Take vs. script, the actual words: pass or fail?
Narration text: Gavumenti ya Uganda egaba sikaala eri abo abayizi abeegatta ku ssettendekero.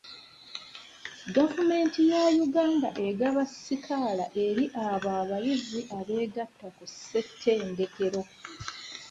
pass